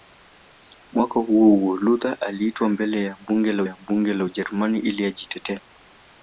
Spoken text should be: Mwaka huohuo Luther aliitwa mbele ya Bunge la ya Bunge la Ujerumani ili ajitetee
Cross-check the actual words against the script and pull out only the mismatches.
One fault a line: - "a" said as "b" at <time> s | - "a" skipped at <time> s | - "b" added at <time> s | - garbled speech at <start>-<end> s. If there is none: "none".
none